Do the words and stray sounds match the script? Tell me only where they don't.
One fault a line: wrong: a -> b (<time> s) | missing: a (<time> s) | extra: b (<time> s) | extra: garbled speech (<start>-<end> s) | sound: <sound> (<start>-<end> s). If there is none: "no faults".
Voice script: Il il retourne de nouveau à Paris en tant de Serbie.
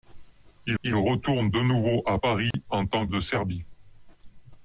sound: dropout (2.5-2.5 s)